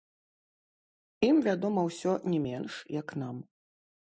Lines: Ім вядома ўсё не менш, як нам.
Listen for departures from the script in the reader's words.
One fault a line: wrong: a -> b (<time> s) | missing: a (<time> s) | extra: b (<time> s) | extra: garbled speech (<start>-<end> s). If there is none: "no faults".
no faults